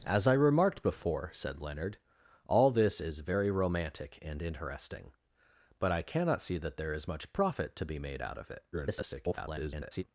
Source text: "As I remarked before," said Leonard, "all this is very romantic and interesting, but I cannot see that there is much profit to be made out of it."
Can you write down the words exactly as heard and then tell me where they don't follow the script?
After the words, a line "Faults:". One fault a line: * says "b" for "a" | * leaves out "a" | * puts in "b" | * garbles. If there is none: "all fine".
"As I remarked before," said Leonard, "all this is very romantic and interesting, but I cannot see that there is much profit to be made out of it." [garbled]
Faults:
* garbles